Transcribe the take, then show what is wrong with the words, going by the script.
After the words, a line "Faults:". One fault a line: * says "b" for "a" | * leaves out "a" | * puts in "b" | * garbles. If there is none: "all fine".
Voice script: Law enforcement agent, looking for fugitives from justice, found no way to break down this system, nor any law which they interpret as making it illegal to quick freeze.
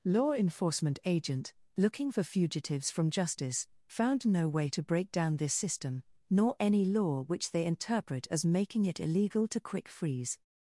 Law enforcement agent, looking for fugitives from justice, found no way to break down this system, nor any law which they interpret as making it illegal to quick freeze.
Faults:
all fine